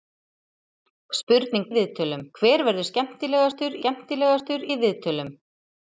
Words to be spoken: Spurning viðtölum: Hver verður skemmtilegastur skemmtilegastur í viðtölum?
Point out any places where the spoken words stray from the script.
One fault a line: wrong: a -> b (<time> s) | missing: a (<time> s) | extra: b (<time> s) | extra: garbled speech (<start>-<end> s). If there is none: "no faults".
no faults